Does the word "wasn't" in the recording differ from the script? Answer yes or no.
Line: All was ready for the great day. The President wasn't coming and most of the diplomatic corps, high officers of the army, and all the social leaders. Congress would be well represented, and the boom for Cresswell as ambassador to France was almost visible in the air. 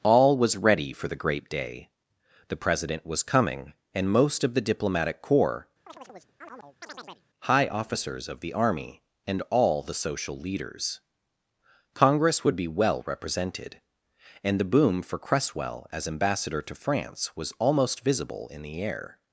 yes